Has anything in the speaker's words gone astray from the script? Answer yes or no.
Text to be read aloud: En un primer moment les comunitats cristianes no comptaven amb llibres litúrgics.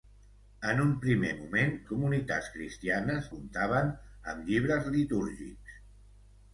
yes